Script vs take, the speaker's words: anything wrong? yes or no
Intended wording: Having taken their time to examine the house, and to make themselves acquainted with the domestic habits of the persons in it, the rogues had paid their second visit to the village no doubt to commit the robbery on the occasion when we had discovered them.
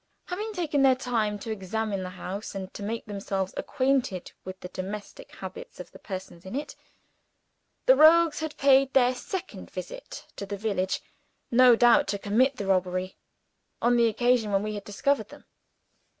no